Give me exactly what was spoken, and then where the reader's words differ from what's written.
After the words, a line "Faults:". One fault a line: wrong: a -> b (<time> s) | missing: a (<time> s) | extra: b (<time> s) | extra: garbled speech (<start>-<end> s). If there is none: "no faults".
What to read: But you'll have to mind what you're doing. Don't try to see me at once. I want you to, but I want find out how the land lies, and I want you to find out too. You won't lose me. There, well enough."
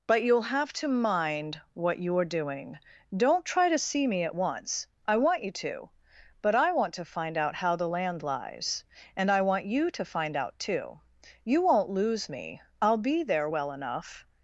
But you'll have to mind what you're doing. Don't try to see me at once. I want you to, but I want to find out how the land lies, and I want you to find out too. You won't lose me. I'll be there, well enough."
Faults:
extra: to (6.9 s)
extra: I'll be (12.8 s)